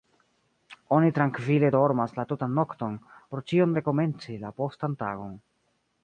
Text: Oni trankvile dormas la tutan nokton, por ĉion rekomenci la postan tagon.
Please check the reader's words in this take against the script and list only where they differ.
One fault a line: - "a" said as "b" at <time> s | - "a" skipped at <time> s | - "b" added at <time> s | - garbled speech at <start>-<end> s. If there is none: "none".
none